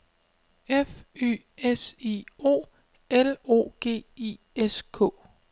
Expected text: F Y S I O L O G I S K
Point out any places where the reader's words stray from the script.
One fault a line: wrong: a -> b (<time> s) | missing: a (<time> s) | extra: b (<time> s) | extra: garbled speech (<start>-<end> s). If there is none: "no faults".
no faults